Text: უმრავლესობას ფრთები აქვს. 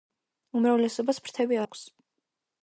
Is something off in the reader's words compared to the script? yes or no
no